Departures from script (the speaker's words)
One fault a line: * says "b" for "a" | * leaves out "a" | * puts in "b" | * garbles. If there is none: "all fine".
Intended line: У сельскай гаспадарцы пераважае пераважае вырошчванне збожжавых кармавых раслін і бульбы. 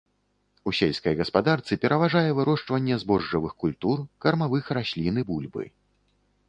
* leaves out "пераважае"
* puts in "культур"